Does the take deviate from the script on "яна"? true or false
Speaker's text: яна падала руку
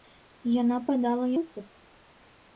false